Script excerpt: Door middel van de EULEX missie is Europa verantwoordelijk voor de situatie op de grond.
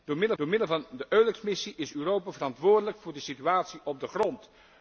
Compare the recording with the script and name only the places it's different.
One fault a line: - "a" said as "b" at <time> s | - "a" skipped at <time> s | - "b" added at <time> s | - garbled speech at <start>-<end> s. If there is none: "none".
- "door middel" added at 0.4 s